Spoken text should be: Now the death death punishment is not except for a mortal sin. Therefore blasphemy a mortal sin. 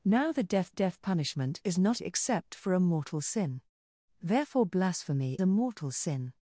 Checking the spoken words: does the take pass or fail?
pass